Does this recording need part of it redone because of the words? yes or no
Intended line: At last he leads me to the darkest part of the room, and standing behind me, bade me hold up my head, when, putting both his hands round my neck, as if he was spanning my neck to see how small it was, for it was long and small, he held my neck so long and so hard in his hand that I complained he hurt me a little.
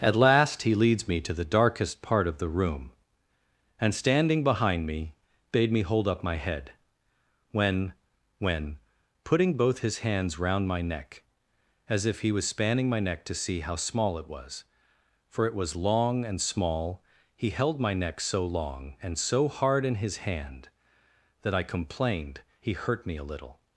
yes